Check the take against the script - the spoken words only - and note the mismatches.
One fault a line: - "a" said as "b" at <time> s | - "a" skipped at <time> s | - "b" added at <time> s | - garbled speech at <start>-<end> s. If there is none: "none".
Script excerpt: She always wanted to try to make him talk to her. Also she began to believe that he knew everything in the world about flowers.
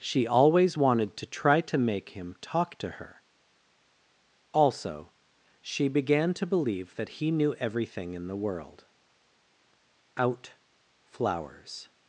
- "about" said as "out" at 10.2 s